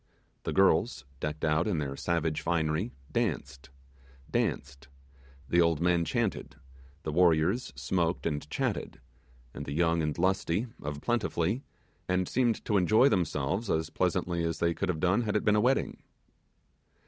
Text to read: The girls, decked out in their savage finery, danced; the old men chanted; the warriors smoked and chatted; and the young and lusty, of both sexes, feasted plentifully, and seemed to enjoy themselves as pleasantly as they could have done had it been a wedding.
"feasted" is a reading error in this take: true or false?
true